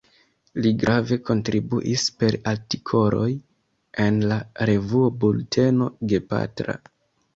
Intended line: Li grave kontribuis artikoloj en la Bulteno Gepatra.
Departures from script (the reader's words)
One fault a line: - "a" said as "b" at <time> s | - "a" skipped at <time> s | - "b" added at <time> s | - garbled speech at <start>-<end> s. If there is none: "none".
- "per" added at 2.2 s
- "revuo" added at 4.7 s